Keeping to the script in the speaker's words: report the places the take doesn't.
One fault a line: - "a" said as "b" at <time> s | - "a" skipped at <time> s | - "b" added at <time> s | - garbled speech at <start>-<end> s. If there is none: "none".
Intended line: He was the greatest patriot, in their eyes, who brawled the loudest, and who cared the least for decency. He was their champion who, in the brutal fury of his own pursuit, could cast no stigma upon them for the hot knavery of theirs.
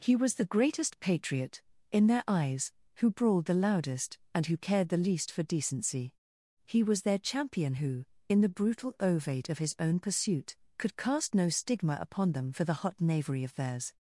- "fury" said as "ovate" at 9.0 s